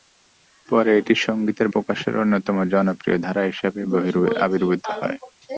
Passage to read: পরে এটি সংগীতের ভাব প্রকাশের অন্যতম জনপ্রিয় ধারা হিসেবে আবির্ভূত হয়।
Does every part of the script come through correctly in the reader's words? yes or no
no